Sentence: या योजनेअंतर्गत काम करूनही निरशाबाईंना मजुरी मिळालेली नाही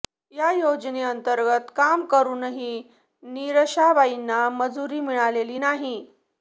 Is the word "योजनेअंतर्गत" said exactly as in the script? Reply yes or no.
yes